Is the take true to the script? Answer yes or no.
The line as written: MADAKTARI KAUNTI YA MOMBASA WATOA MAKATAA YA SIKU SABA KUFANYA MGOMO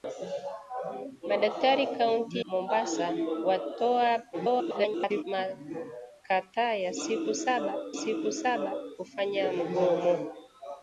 no